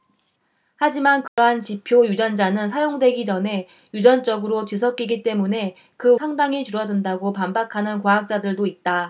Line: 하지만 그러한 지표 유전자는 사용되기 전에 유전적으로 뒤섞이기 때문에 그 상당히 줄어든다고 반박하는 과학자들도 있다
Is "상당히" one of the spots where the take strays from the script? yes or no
no